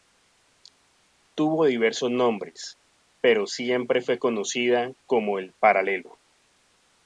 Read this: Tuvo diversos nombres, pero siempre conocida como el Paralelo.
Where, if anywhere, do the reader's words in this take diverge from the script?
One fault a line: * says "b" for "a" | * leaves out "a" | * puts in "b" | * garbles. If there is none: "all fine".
* puts in "fue"